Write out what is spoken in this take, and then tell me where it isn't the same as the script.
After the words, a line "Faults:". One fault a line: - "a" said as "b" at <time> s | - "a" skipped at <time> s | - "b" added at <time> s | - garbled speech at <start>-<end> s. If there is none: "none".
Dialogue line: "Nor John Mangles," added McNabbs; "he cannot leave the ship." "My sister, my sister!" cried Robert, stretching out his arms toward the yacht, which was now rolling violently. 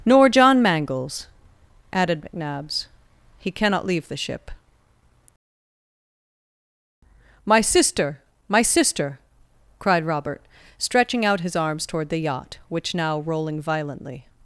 "Nor John Mangles," added McNabbs; "he cannot leave the ship." "My sister, my sister!" cried Robert, stretching out his arms toward the yacht, which now rolling violently.
Faults:
- "was" skipped at 12.9 s